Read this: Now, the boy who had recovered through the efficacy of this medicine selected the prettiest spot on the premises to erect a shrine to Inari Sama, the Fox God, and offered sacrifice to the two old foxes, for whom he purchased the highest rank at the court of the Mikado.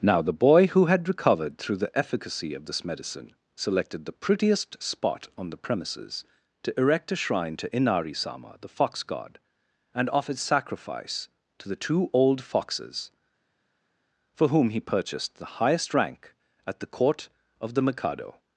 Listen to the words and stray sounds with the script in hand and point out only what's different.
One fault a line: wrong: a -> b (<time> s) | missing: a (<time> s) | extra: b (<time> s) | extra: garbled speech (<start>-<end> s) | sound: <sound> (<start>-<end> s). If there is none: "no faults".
no faults